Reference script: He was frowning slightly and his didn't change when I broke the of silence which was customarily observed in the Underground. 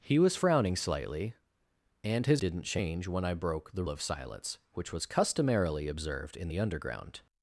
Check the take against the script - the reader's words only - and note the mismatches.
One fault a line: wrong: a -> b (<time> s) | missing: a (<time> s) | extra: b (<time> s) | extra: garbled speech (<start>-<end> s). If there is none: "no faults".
no faults